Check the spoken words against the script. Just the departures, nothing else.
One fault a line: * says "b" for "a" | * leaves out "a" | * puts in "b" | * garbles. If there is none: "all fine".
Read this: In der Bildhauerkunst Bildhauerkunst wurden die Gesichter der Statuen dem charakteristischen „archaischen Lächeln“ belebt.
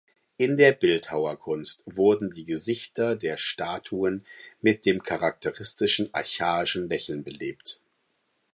* leaves out "Bildhauerkunst"
* puts in "mit"